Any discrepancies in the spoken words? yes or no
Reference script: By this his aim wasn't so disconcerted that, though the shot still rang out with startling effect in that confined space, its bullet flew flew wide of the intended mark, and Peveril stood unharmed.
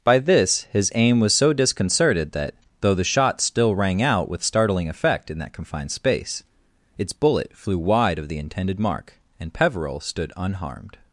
yes